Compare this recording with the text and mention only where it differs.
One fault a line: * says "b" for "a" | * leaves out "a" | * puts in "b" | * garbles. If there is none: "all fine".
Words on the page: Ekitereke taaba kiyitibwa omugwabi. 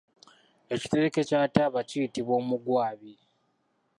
* puts in "kya"